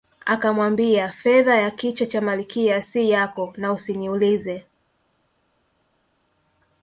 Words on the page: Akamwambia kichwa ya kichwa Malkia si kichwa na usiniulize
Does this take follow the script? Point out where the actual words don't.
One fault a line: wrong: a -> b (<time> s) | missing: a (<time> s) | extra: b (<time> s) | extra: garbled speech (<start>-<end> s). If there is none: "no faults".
wrong: kichwa -> fedha (1.1 s)
extra: cha (2.1 s)
wrong: kichwa -> yako (3.1 s)